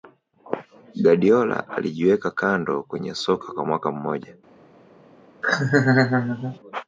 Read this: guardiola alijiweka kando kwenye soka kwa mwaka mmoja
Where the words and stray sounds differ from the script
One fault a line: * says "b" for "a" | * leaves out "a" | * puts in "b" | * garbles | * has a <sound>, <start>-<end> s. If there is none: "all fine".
* has a laugh, 5.4-6.6 s